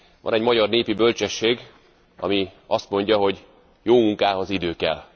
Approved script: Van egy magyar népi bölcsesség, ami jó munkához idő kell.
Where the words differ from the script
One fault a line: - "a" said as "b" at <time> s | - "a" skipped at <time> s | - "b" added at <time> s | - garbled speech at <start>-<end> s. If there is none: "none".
- "azt mondja hogy" added at 2.7 s